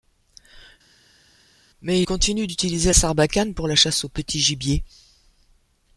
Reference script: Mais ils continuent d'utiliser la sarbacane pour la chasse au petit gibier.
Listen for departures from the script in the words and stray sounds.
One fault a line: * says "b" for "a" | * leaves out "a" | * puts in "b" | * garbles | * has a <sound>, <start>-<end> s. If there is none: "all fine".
* leaves out "ils"
* leaves out "la"